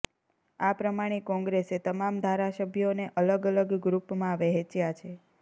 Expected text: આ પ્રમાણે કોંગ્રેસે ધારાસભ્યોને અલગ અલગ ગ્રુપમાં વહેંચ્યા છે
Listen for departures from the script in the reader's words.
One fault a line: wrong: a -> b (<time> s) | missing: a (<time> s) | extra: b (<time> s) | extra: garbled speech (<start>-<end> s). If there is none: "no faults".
extra: તમામ (1.8 s)